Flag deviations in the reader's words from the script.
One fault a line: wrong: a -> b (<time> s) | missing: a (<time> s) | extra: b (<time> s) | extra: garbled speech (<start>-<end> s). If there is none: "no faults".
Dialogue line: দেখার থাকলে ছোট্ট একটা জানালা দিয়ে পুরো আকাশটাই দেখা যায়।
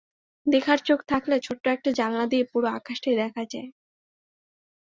extra: চোখ (0.8 s)